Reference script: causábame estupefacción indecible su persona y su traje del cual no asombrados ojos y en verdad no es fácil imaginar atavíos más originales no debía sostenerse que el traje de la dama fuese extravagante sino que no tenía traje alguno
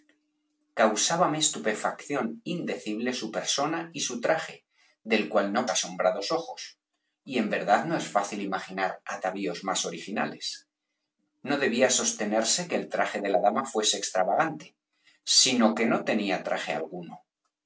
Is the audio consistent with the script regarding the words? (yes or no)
yes